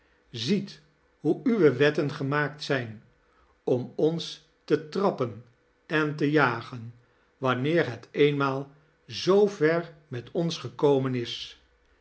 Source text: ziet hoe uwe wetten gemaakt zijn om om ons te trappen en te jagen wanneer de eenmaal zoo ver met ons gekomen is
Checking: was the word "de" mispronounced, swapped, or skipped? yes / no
yes